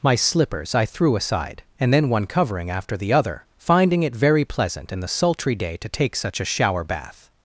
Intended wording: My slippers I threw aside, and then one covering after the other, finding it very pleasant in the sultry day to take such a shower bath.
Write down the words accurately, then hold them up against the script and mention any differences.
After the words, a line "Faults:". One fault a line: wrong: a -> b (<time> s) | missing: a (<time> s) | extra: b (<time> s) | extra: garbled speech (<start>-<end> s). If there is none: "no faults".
My slippers I threw aside, and then one covering after the other, finding it very pleasant in the sultry day to take such a shower bath.
Faults:
no faults